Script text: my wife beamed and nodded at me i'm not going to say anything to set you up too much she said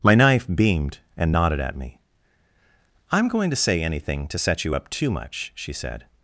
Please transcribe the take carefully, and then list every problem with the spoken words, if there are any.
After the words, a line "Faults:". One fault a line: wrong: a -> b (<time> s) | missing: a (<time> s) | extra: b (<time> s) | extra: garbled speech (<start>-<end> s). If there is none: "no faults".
my knife beamed and nodded at me i'm going to say anything to set you up too much she said
Faults:
wrong: wife -> knife (0.1 s)
missing: not (3.3 s)